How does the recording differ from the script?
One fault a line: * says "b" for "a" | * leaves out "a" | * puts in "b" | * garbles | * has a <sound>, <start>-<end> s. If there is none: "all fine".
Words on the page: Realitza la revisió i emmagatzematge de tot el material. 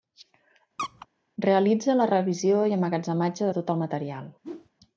* has a squeak, 0.8-1.1 s
* has a whoosh, 4.4-4.7 s